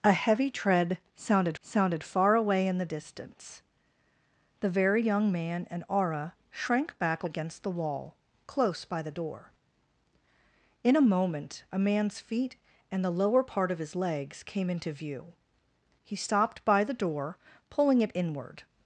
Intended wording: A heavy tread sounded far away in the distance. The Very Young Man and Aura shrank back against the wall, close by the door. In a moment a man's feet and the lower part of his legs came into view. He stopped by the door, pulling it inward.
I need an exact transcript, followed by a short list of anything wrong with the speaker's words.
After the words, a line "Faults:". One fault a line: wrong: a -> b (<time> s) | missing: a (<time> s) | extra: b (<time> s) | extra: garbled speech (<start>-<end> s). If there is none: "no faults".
A heavy tread sounded sounded far away in the distance. The Very Young Man and Aura shrank back against the wall, close by the door. In a moment a man's feet and the lower part of his legs came into view. He stopped by the door, pulling it inward.
Faults:
extra: sounded (1.6 s)